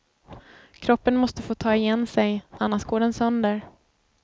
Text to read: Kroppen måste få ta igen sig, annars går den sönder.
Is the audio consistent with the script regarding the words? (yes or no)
yes